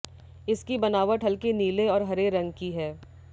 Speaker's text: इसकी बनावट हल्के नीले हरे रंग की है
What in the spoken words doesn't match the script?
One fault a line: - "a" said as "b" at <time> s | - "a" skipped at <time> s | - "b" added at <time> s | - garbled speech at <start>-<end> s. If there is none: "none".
- "और" added at 1.9 s